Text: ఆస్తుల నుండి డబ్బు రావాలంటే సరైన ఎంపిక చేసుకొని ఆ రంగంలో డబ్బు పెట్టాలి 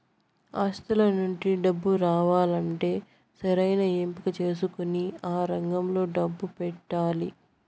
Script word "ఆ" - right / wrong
right